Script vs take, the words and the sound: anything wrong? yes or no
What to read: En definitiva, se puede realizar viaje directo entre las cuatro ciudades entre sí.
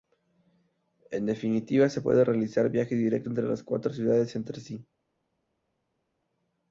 no